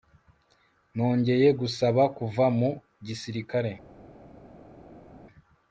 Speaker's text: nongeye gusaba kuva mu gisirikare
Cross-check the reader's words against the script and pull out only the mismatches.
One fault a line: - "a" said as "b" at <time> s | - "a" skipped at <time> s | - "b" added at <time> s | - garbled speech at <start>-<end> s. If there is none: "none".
none